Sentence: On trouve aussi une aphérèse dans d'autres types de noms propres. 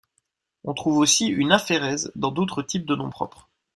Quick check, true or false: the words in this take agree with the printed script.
true